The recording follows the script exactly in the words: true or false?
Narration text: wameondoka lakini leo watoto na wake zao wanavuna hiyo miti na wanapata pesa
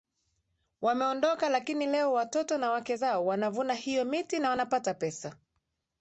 true